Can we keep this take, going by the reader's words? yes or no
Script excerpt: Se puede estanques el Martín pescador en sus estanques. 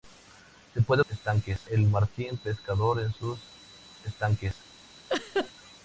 yes